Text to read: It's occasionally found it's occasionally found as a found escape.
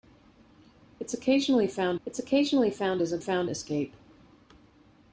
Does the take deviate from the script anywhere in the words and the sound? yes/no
no